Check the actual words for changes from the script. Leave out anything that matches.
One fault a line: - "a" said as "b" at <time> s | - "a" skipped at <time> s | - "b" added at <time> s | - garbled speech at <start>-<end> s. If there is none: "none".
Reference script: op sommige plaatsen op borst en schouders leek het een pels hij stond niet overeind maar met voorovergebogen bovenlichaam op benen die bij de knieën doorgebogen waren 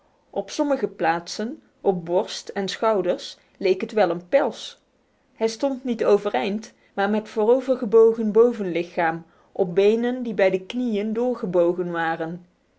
- "wel" added at 3.9 s